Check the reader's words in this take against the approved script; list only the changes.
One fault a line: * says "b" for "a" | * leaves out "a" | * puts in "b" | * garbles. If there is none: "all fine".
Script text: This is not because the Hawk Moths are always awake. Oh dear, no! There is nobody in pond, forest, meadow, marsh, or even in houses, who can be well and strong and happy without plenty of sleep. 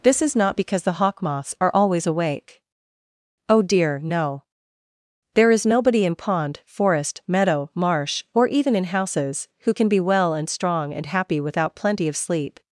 all fine